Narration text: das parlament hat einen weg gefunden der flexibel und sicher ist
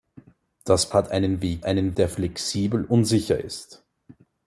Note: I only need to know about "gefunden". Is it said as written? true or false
false